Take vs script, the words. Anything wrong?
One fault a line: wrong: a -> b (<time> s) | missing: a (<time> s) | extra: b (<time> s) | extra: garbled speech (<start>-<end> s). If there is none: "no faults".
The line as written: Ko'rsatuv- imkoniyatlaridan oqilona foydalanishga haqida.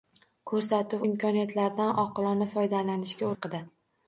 no faults